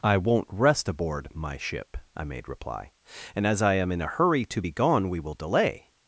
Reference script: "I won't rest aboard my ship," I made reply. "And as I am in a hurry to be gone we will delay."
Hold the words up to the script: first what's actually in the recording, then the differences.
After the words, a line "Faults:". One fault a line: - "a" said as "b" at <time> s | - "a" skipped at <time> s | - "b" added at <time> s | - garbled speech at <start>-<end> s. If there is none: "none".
"I won't rest aboard my ship," I made reply. "And as I am in a hurry to be gone we will delay."
Faults:
none